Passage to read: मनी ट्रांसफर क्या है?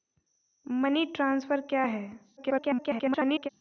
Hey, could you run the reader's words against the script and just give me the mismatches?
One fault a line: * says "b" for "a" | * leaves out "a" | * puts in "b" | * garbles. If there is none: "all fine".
* garbles